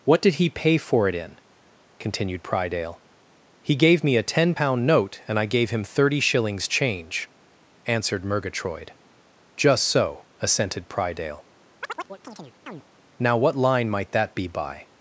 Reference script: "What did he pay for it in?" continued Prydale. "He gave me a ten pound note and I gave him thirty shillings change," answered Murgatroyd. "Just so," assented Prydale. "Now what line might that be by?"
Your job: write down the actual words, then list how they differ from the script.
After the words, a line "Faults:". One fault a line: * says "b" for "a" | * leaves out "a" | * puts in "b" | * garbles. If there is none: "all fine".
"What did he pay for it in?" continued Prydale. "He gave me a ten pound note and I gave him thirty shillings change," answered Murgatroyd. "Just so," assented Prydale. "Now what line might that be by?"
Faults:
all fine